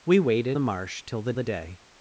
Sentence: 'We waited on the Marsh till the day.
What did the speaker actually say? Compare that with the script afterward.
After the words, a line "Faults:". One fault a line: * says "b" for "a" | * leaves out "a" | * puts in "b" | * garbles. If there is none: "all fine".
'We waited the Marsh till the the day.
Faults:
* leaves out "on"
* puts in "the"